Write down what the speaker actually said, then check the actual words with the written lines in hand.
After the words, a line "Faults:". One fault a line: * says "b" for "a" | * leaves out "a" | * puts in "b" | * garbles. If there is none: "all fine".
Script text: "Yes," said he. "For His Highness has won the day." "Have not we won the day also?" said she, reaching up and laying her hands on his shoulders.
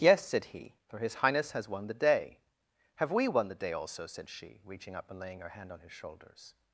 "Yes," said he. "For His Highness has won the day." "Have we won the day also?" said she, reaching up and laying her hand on his shoulders.
Faults:
* leaves out "not"
* says "hand" for "hands"